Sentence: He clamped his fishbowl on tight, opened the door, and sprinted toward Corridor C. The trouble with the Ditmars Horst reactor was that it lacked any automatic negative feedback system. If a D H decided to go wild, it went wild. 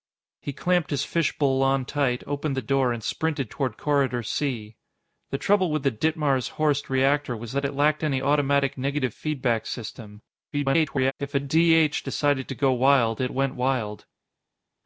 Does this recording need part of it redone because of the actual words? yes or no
yes